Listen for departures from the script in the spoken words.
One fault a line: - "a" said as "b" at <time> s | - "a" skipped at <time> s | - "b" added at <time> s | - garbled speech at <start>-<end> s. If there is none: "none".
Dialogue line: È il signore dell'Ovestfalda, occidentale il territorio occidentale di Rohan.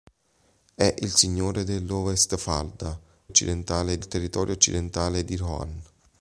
none